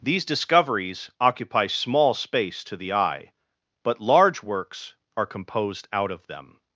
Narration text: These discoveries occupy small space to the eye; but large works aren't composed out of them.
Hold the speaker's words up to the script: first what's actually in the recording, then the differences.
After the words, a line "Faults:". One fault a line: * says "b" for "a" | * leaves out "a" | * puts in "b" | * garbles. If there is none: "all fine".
These discoveries occupy small space to the eye; but large works are composed out of them.
Faults:
* says "are" for "aren't"